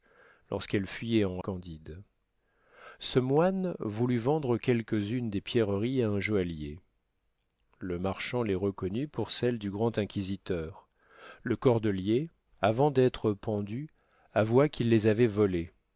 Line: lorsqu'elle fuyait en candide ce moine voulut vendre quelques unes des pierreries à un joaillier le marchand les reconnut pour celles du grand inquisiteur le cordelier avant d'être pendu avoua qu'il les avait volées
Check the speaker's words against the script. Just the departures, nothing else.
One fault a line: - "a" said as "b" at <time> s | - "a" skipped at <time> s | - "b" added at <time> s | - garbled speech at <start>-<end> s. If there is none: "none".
none